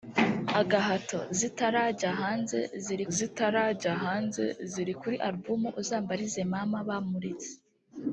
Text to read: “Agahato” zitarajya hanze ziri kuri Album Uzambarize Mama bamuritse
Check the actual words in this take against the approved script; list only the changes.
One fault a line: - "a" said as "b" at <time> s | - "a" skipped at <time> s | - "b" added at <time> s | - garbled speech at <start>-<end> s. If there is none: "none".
- "zitarajya hanze ziri" added at 3.1 s